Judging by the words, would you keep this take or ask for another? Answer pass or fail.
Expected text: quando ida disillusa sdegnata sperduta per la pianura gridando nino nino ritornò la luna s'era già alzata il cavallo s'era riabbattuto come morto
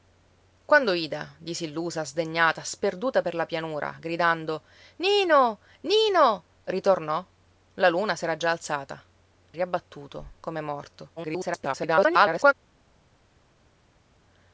fail